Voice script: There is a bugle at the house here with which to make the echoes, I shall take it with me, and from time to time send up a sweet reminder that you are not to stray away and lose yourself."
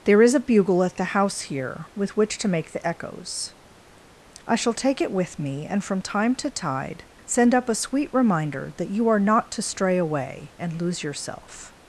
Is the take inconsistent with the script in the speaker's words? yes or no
yes